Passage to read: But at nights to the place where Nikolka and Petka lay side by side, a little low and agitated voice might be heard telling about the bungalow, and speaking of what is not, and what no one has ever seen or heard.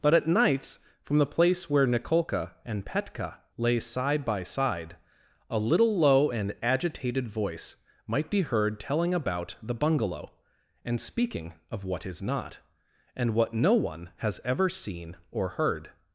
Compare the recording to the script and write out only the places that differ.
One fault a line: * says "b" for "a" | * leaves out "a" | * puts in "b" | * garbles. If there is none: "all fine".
* says "from" for "to"